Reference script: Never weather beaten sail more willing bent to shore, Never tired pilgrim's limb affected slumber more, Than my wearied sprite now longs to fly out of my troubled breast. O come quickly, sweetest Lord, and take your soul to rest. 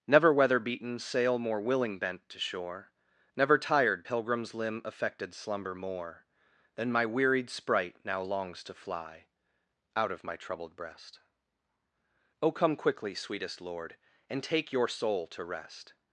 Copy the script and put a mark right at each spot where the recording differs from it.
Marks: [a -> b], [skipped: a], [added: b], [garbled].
Never weather beaten sail more willing bent to shore, Never tired pilgrim's limb affected slumber more, Than my wearied sprite now longs to fly out of my troubled breast. O come quickly, sweetest Lord, and take your soul to rest.